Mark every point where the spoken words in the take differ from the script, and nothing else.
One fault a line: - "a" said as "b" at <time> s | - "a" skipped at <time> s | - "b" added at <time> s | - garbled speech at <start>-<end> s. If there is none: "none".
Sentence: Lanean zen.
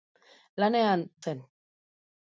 none